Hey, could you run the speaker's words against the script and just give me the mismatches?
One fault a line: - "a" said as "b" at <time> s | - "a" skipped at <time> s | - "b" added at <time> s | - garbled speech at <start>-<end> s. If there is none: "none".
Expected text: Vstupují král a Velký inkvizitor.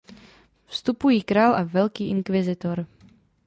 none